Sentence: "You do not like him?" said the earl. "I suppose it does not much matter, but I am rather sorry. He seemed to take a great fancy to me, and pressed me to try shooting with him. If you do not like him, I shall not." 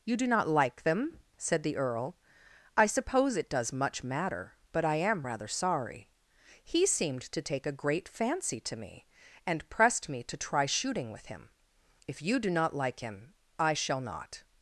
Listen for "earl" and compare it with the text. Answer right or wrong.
right